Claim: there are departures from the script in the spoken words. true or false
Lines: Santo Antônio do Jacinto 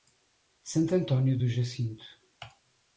false